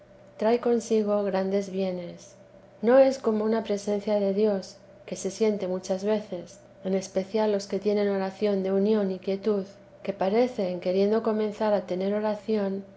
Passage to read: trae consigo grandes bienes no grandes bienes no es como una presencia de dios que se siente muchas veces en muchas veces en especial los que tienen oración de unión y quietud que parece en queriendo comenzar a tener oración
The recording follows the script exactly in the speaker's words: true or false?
false